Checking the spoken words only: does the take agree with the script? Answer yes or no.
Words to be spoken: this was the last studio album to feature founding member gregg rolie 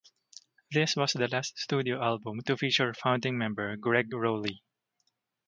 yes